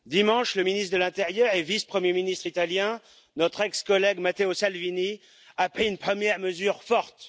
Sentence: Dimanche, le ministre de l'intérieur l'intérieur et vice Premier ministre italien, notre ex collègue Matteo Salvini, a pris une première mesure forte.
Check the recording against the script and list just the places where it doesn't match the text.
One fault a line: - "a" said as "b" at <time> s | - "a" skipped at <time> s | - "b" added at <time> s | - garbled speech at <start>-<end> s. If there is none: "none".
- "l'intérieur" skipped at 1.5 s